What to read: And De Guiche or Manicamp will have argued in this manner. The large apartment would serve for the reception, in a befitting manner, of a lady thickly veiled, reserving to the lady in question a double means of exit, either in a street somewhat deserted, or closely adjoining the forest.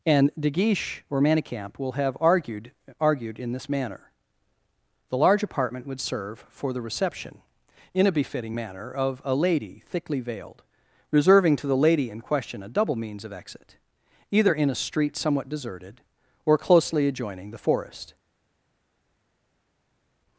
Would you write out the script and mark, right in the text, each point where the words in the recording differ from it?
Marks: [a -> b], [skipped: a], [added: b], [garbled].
And De Guiche or Manicamp will have argued [added: argued] in this manner. The large apartment would serve for the reception, in a befitting manner, of a lady thickly veiled, reserving to the lady in question a double means of exit, either in a street somewhat deserted, or closely adjoining the forest.